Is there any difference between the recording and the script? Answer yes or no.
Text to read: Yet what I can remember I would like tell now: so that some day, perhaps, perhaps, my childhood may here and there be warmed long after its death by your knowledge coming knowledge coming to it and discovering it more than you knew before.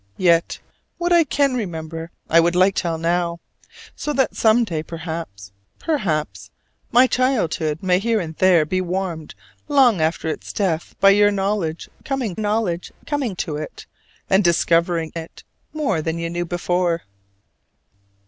no